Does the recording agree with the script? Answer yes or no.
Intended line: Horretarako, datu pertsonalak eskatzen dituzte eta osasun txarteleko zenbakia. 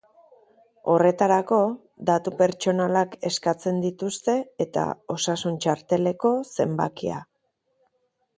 yes